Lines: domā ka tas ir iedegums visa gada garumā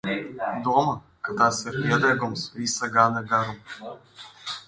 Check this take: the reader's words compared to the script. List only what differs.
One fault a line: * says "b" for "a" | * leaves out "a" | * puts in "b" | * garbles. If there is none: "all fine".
all fine